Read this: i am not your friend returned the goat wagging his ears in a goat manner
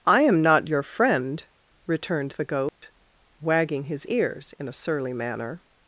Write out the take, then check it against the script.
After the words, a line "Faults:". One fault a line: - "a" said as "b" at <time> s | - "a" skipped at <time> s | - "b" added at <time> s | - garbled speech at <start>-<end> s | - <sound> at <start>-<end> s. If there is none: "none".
i am not your friend returned the goat wagging his ears in a surly manner
Faults:
- dropout at 2.7-2.8 s
- "goat" said as "surly" at 4.7 s